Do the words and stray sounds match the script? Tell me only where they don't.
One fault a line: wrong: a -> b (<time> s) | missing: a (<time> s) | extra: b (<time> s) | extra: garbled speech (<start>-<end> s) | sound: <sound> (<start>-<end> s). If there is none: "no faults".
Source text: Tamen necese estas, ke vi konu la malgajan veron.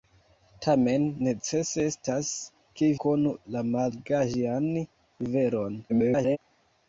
missing: vi (2.9 s)
extra: garbled speech (5.9-6.4 s)